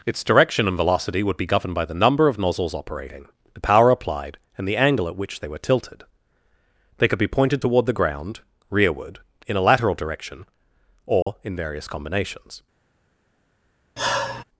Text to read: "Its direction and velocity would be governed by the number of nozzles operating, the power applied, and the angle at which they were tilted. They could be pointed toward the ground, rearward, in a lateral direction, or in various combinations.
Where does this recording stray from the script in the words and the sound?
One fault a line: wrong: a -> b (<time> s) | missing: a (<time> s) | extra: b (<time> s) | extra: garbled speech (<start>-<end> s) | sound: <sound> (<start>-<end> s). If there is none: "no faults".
sound: dropout (11.2-11.3 s)
sound: sigh (14.0-14.4 s)